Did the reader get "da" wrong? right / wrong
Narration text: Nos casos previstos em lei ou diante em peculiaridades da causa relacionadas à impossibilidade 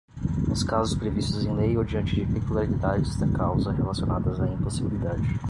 right